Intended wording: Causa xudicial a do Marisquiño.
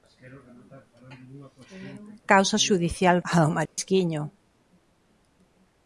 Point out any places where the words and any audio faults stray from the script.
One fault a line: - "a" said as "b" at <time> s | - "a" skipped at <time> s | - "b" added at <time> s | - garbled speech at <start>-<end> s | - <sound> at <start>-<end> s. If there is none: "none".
- dropout at 3.7-3.8 s